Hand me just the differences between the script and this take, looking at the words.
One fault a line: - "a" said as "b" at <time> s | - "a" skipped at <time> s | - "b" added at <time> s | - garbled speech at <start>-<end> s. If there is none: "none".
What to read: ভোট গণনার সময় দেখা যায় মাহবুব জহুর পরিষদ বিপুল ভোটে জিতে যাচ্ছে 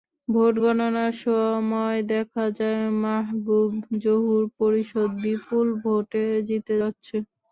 none